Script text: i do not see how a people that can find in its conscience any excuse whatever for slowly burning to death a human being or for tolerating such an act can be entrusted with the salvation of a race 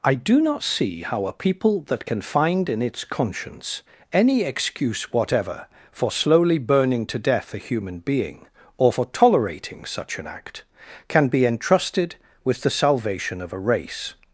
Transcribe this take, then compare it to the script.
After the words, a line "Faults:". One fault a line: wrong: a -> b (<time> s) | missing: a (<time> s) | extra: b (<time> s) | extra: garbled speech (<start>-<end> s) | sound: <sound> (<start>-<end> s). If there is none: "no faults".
i do not see how a people that can find in its conscience any excuse whatever for slowly burning to death a human being or for tolerating such an act can be entrusted with the salvation of a race
Faults:
no faults